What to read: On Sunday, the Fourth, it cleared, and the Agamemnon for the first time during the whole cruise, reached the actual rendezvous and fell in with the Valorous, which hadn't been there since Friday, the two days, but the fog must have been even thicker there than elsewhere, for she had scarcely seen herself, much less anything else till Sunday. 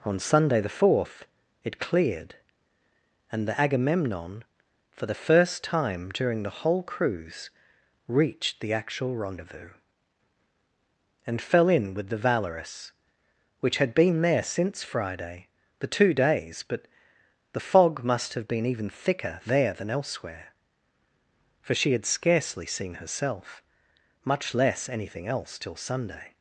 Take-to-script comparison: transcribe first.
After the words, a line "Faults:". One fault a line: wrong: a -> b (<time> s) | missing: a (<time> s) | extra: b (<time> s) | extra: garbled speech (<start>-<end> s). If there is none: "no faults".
On Sunday, the Fourth, it cleared, and the Agamemnon for the first time during the whole cruise, reached the actual rendezvous and fell in with the Valorous, which had been there since Friday, the two days, but the fog must have been even thicker there than elsewhere, for she had scarcely seen herself, much less anything else till Sunday.
Faults:
wrong: hadn't -> had (13.8 s)